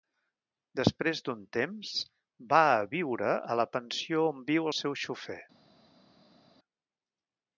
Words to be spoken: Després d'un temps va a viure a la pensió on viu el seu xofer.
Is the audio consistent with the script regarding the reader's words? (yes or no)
yes